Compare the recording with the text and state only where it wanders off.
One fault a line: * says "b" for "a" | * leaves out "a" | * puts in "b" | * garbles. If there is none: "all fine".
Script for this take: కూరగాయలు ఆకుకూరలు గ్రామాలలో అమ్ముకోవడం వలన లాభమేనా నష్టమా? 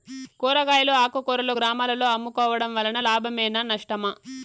all fine